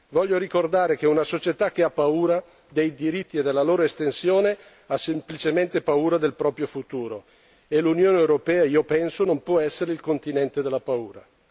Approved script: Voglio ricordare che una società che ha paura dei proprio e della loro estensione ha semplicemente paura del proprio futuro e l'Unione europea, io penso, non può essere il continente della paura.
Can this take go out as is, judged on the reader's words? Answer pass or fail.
fail